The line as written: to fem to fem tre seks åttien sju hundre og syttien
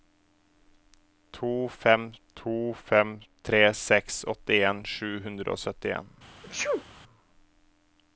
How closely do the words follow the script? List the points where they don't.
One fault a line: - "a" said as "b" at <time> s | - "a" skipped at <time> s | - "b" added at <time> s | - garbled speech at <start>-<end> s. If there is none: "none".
none